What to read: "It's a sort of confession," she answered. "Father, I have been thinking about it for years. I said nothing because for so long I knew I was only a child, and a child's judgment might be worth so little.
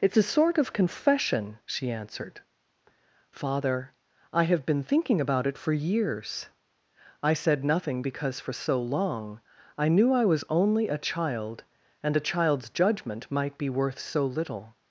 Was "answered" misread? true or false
false